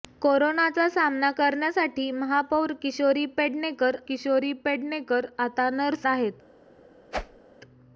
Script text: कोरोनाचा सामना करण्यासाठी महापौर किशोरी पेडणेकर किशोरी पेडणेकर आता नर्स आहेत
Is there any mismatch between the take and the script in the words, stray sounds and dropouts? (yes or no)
yes